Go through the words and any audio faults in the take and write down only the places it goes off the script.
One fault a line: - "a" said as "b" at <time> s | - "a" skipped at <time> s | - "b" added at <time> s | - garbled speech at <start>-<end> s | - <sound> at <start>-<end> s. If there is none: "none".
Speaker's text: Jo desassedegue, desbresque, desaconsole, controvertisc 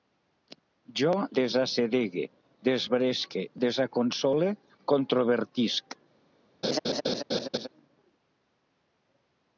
- laugh at 6.6-7.7 s